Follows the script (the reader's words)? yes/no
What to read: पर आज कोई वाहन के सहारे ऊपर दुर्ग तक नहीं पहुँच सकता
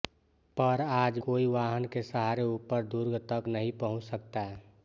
yes